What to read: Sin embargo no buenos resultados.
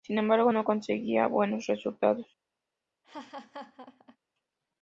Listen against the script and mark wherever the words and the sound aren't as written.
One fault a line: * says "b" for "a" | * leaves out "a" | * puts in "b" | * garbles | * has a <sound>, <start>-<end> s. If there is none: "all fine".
* puts in "conseguía"
* has a laugh, 3.0-4.2 s